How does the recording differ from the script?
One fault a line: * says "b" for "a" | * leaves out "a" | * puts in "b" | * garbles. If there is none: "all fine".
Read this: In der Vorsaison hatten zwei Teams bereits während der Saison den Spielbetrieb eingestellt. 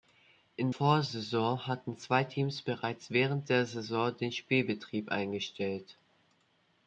* leaves out "der"